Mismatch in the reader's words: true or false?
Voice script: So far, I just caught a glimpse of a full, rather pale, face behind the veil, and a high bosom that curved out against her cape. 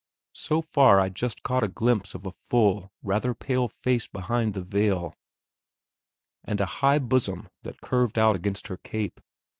false